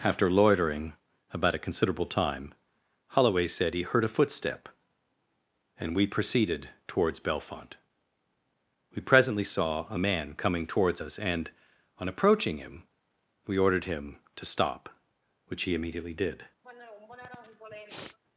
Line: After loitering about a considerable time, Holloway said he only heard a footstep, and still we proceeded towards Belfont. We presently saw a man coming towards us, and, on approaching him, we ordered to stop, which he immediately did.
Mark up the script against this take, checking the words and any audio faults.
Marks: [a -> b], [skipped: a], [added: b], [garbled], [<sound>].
After loitering about a considerable time, Holloway said he [skipped: only] heard a footstep, and [skipped: still] we proceeded towards Belfont. We presently saw a man coming towards us, and, on approaching him, we ordered [added: him] to stop, which he immediately did. [sniff]